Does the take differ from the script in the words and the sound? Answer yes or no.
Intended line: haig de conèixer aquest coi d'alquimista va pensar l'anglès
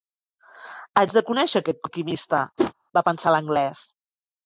yes